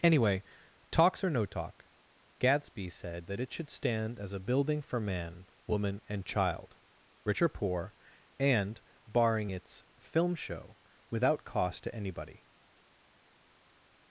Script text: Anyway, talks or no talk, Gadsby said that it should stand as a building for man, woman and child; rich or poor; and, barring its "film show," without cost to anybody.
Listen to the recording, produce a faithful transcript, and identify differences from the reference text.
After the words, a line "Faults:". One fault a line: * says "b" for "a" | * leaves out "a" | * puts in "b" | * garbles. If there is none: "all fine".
Anyway, talks or no talk, Gadsby said that it should stand as a building for man, woman and child; rich or poor; and, barring its "film show," without cost to anybody.
Faults:
all fine